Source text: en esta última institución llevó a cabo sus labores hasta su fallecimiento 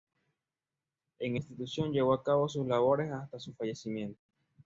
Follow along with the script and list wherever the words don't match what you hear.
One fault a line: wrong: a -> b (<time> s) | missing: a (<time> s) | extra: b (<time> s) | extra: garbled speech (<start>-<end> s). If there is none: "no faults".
missing: esta última (1.4 s)